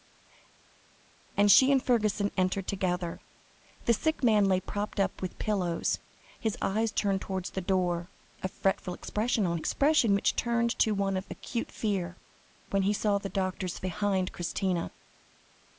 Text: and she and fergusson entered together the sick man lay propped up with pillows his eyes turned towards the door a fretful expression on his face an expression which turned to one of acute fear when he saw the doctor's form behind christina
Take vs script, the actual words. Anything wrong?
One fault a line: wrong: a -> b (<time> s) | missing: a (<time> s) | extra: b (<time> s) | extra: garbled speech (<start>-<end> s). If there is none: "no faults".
missing: his face an (9.6 s)
missing: form (13.8 s)